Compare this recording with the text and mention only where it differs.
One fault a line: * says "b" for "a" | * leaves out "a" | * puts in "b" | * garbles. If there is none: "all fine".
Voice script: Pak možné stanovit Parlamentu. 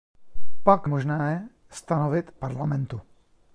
all fine